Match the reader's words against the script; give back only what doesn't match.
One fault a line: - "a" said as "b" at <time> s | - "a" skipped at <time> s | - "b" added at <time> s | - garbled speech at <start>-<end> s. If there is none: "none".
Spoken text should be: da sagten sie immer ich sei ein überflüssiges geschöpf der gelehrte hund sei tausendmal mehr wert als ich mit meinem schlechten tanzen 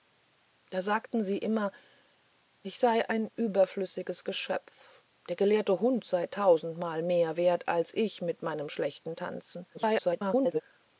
- garbled speech at 9.7-10.6 s